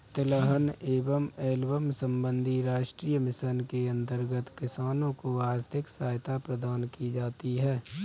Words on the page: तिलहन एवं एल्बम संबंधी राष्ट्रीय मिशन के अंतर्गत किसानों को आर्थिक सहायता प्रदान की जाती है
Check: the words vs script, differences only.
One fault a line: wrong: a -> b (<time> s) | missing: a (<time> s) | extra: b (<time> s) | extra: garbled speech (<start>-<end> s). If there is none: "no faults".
no faults